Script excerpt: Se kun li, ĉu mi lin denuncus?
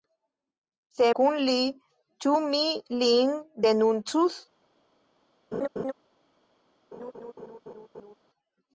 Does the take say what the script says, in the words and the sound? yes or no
no